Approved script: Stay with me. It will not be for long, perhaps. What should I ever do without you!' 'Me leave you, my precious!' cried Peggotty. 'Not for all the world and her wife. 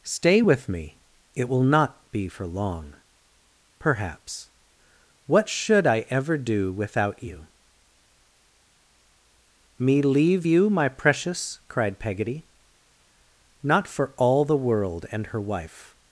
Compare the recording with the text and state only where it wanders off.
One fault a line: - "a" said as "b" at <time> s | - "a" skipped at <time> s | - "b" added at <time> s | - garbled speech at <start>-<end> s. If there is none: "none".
none